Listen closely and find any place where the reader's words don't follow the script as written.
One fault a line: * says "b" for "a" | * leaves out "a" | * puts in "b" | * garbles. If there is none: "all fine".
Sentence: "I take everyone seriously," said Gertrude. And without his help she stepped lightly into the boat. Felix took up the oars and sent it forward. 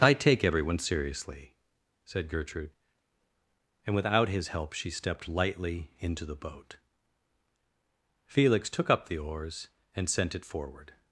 all fine